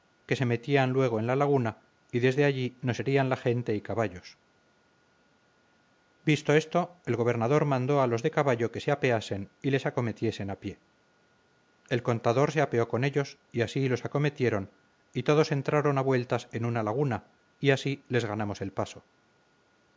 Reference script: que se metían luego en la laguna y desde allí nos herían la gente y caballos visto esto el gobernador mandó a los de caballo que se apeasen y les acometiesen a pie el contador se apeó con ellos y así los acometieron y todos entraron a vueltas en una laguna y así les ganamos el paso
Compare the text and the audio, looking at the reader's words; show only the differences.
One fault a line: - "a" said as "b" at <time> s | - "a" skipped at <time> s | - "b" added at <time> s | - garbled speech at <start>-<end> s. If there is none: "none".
none